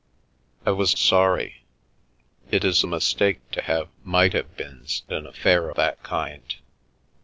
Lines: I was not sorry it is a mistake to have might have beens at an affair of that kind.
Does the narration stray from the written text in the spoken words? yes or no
yes